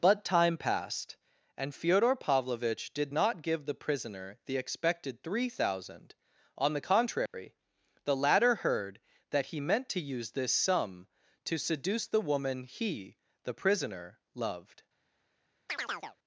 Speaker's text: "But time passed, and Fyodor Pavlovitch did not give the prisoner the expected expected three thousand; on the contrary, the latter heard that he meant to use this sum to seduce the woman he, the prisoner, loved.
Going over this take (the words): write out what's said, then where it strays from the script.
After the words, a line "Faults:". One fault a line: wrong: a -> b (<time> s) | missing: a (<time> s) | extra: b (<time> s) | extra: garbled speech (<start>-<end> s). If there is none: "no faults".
"But time passed, and Fyodor Pavlovitch did not give the prisoner the expected three thousand; on the contrary, the latter heard that he meant to use this sum to seduce the woman he, the prisoner, loved.
Faults:
missing: expected (5.2 s)